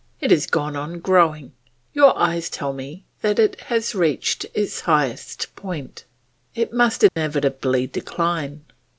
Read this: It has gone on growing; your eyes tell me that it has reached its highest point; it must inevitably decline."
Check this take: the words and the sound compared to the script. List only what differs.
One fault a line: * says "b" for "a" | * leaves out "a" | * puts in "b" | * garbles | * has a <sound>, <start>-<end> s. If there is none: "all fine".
* has a dropout, 7.1-7.2 s